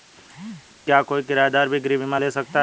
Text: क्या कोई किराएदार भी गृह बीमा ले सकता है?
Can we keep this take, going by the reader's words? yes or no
yes